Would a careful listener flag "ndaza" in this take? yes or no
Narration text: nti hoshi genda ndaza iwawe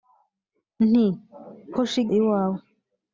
yes